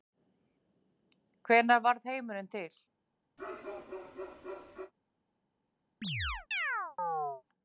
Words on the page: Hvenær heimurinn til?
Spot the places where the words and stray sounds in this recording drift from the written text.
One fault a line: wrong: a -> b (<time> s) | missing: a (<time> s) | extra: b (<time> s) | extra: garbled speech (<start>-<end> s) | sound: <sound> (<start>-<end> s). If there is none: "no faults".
extra: varð (1.9 s)
sound: bark (3.4-4.9 s)
sound: chirp (6.0-7.4 s)